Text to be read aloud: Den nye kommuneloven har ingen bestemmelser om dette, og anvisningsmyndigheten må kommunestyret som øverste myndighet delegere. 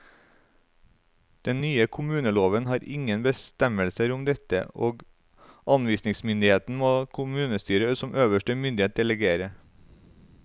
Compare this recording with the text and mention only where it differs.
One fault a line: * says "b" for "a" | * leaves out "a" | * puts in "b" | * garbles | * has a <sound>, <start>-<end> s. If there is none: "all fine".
all fine